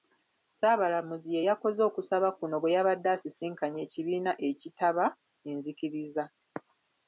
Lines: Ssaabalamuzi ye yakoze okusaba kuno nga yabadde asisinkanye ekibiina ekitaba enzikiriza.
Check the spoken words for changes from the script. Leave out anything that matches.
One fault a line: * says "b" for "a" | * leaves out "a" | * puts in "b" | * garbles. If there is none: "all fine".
* says "bwe" for "nga"